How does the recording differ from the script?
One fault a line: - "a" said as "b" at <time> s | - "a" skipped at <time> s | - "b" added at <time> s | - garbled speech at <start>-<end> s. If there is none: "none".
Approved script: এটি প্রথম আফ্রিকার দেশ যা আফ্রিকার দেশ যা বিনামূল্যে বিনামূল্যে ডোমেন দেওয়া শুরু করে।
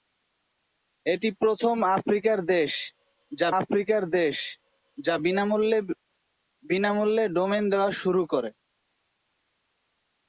none